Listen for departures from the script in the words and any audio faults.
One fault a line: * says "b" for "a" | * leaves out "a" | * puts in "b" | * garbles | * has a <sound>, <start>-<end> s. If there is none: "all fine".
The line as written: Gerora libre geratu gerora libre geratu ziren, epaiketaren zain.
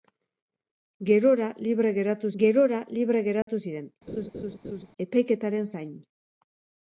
* has a dropout, 3.4-3.5 s
* has a laugh, 4.1-4.9 s